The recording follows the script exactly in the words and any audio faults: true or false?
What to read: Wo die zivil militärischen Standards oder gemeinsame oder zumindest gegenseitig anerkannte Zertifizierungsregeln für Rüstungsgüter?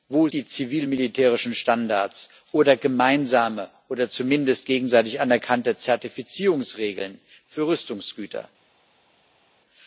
true